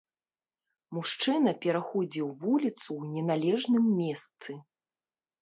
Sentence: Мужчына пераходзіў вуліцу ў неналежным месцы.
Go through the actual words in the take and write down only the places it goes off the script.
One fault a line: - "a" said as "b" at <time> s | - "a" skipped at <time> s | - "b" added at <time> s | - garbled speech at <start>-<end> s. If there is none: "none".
none